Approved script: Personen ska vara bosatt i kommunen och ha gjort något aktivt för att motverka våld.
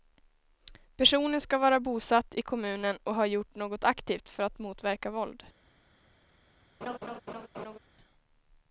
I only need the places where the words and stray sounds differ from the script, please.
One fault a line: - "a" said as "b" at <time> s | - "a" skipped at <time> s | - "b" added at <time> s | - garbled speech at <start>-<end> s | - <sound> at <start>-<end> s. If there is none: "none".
- laugh at 6.8-7.8 s